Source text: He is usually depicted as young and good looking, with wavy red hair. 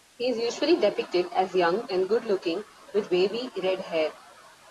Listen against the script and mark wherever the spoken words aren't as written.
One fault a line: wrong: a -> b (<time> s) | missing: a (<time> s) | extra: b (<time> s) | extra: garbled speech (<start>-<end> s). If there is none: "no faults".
no faults